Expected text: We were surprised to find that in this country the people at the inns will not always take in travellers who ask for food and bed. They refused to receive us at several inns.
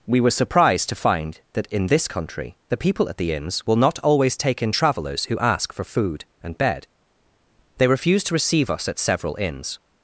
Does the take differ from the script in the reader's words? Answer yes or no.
no